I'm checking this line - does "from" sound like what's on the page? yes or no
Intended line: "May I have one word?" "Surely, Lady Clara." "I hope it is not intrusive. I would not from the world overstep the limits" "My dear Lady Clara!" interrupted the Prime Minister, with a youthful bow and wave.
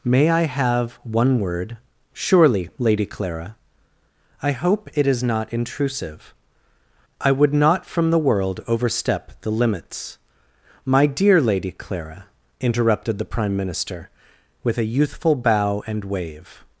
yes